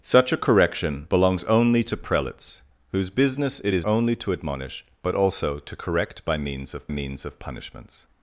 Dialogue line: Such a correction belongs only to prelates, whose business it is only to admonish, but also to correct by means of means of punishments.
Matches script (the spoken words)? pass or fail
pass